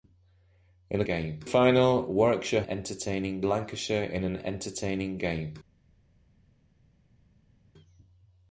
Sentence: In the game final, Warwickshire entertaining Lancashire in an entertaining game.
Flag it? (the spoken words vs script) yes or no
no